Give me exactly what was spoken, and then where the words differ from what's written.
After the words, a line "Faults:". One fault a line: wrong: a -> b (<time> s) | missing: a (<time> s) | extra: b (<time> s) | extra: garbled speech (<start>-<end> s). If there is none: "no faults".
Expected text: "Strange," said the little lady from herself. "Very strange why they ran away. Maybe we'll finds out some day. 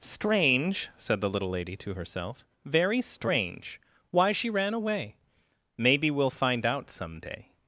"Strange," said the little lady to herself. "Very strange why she ran away. Maybe we'll find out some day.
Faults:
wrong: from -> to (1.8 s)
wrong: they -> she (4.3 s)
wrong: finds -> find (6.3 s)